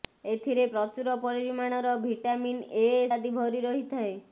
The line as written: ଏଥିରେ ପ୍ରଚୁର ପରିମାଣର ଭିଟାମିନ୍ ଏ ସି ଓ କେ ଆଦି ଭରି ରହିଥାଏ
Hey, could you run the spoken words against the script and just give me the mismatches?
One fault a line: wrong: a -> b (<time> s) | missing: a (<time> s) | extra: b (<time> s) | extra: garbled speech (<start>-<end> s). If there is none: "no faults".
missing: ସି ଓ କେ (2.9 s)